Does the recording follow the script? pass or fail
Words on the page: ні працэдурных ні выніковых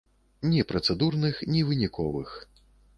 pass